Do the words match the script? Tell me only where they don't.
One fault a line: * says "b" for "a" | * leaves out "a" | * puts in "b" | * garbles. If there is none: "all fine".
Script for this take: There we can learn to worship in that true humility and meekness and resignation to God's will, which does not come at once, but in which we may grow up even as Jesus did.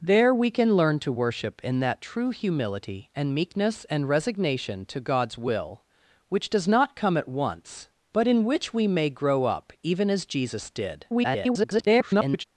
* garbles